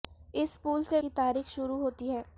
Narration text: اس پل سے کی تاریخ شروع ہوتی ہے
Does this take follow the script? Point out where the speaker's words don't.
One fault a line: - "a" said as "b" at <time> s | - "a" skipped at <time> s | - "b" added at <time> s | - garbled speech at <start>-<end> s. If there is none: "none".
none